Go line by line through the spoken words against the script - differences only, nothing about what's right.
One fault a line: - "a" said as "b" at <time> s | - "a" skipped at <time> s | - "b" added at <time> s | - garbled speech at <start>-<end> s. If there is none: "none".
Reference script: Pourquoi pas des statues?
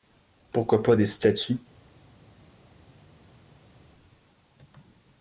none